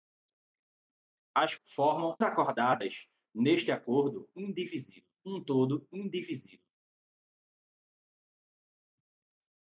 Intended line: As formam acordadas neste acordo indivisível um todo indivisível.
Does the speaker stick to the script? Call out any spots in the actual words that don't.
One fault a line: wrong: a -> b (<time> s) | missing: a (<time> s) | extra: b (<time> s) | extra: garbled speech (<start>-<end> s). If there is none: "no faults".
no faults